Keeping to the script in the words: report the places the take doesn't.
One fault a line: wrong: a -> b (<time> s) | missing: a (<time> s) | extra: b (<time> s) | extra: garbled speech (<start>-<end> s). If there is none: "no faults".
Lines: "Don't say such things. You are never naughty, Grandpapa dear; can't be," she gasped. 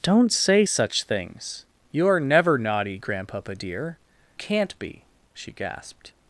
no faults